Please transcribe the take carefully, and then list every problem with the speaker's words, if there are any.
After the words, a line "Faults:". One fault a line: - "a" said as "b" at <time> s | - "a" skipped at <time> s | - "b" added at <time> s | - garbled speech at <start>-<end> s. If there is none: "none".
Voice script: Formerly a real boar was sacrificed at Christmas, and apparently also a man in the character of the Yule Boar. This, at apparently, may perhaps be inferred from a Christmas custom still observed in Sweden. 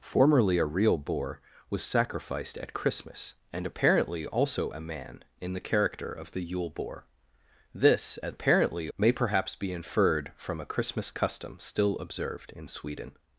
Formerly a real boar was sacrificed at Christmas, and apparently also a man in the character of the Yule Boar. This, at apparently, may perhaps be inferred from a Christmas custom still observed in Sweden.
Faults:
none